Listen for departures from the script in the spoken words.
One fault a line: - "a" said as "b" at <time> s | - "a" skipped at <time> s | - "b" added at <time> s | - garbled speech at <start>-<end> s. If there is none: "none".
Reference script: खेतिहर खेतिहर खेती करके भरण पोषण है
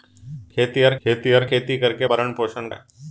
none